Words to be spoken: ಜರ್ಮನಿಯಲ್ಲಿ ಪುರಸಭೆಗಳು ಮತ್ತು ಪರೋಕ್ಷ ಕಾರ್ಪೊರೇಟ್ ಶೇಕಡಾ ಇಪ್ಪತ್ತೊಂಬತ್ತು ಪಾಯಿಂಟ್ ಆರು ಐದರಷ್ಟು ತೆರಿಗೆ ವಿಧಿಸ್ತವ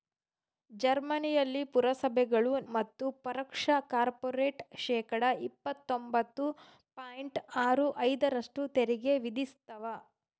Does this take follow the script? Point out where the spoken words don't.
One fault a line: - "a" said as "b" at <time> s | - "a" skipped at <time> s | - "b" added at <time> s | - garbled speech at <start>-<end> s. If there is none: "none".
none